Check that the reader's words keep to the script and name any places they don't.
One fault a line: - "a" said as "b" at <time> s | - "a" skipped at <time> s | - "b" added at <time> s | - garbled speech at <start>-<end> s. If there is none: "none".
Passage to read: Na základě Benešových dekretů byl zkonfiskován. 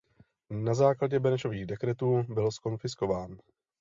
none